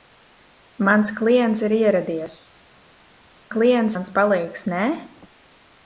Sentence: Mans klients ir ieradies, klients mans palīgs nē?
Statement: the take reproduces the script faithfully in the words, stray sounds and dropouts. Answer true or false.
true